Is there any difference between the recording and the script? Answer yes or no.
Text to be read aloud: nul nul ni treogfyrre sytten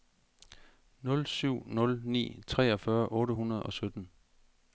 yes